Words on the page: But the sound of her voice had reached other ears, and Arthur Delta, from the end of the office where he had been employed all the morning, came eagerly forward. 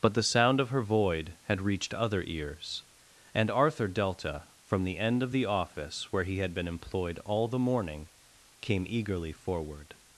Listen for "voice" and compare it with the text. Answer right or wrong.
wrong